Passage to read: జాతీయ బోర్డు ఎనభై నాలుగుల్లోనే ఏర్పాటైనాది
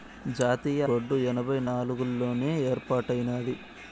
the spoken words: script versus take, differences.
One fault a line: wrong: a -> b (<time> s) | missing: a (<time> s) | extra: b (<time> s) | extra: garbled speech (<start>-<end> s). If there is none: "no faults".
no faults